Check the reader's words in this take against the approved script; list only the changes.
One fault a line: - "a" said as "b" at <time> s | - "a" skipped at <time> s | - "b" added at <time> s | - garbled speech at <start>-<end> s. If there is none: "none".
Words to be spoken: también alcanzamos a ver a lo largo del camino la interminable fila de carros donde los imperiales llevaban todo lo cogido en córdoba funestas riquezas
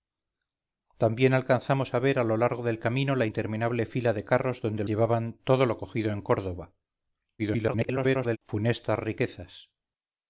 - "los imperiales" skipped at 4.8 s
- garbled speech at 7.4-8.4 s